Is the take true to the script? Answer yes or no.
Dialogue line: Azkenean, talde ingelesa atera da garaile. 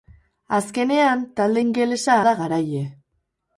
no